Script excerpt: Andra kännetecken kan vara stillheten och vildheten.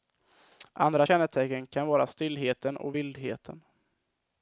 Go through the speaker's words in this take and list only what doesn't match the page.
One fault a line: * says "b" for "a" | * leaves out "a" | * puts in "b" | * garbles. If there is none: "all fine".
all fine